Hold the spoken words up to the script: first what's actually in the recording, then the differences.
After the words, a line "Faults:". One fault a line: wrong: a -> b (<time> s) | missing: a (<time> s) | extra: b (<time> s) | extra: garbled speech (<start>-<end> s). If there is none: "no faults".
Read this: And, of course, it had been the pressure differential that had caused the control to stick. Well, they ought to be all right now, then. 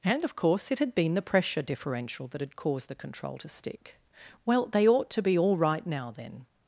And, of course, it had been the pressure differential that had caused the control to stick. Well, they ought to be all right now, then.
Faults:
no faults